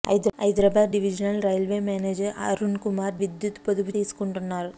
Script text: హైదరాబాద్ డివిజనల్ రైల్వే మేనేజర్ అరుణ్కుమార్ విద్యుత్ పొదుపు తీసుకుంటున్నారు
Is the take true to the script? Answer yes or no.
yes